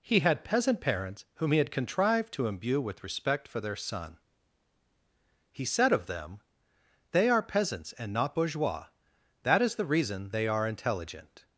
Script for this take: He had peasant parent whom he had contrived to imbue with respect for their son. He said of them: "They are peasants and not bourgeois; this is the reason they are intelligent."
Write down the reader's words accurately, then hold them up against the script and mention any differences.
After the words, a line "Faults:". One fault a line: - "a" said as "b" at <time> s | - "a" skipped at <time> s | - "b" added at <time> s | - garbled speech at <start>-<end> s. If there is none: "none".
He had peasant parents whom he had contrived to imbue with respect for their son. He said of them: "They are peasants and not bourgeois; that is the reason they are intelligent."
Faults:
- "parent" said as "parents" at 0.8 s
- "this" said as "that" at 9.4 s